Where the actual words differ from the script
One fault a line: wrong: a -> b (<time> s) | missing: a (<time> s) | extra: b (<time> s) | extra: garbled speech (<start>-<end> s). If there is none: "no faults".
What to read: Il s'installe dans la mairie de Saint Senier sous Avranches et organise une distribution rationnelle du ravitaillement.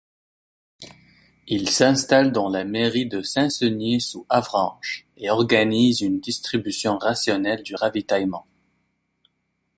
no faults